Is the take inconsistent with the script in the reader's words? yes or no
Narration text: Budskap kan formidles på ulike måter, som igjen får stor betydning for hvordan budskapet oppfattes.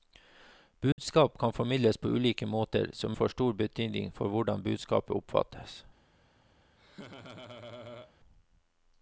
yes